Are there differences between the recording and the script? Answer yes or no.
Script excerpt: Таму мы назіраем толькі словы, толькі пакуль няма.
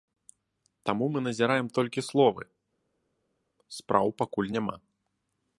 yes